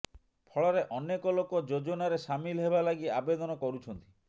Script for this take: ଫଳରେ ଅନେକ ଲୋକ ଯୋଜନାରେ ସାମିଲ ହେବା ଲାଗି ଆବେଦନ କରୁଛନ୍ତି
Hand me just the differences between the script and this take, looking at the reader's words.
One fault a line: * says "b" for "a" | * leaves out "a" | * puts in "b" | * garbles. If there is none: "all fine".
all fine